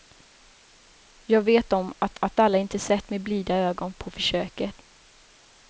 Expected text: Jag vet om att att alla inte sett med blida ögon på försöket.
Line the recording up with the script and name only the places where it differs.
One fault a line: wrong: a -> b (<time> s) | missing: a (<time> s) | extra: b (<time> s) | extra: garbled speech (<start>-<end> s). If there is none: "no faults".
no faults